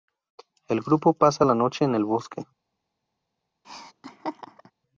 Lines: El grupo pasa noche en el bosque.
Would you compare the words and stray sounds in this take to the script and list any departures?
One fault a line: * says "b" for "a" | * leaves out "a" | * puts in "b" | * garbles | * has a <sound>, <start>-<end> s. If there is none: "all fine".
* puts in "la"
* has a laugh, 3.6-4.7 s